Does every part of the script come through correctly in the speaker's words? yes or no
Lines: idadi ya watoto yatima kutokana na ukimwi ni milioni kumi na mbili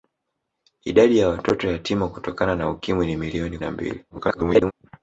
no